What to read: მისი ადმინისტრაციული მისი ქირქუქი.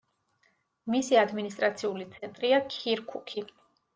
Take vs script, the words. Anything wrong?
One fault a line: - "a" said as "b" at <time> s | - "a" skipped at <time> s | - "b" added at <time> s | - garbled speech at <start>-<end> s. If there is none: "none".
- "მისი" said as "ცენტრია" at 2.1 s